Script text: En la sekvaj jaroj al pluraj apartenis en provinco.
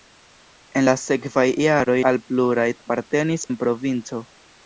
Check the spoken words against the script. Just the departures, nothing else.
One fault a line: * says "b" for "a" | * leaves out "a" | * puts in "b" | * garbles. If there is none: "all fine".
all fine